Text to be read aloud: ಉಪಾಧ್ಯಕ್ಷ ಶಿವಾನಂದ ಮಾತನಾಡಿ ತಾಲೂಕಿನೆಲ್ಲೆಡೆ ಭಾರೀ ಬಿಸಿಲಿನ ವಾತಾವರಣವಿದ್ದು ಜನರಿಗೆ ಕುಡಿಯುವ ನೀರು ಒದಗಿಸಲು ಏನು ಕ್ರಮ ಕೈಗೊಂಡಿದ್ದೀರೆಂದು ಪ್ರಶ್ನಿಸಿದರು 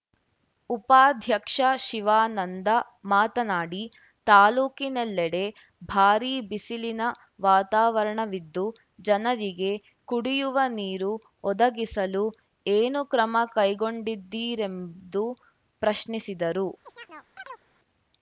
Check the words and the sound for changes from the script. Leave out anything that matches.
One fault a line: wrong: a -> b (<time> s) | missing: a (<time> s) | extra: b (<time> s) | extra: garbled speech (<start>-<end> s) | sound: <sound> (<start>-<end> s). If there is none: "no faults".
sound: chirp (16.9-17.6 s)